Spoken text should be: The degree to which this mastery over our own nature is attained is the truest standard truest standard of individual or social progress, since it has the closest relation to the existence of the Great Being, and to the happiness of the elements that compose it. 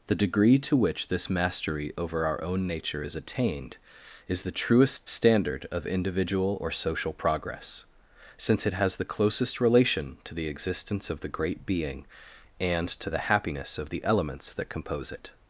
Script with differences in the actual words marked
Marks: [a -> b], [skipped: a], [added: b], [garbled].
The degree to which this mastery over our own nature is attained is the truest standard [skipped: truest standard] of individual or social progress, since it has the closest relation to the existence of the Great Being, and to the happiness of the elements that compose it.